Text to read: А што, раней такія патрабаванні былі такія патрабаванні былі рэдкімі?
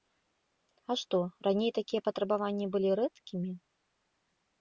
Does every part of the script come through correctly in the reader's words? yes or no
no